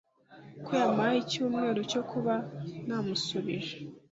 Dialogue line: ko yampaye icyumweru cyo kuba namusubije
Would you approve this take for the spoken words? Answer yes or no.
yes